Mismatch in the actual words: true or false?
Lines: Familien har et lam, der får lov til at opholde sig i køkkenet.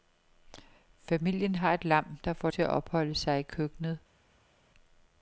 true